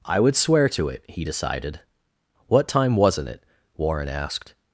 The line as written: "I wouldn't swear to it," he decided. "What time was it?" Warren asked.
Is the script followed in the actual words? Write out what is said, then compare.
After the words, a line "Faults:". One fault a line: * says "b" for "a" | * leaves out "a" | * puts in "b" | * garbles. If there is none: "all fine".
"I would swear to it," he decided. "What time wasn't it?" Warren asked.
Faults:
* says "would" for "wouldn't"
* says "wasn't" for "was"